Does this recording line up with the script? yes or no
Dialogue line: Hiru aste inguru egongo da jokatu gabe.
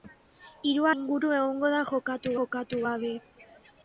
no